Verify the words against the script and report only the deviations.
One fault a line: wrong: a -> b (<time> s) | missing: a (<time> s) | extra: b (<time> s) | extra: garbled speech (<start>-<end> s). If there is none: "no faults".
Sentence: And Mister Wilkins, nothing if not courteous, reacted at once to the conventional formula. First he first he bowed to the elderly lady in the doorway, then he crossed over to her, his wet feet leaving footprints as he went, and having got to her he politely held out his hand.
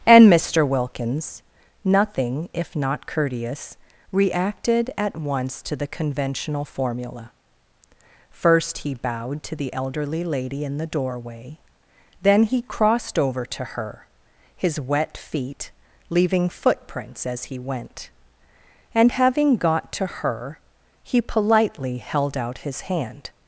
missing: first he (8.9 s)